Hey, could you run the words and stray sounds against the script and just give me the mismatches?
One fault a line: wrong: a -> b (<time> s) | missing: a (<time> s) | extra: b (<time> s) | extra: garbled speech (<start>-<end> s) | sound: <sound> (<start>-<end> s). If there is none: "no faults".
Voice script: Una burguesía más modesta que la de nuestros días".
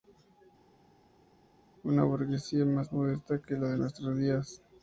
no faults